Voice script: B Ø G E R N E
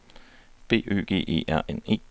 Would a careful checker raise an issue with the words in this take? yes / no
no